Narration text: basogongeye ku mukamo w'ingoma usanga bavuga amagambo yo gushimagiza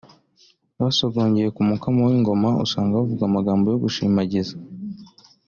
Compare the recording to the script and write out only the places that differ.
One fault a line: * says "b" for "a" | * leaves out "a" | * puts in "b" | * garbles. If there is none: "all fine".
all fine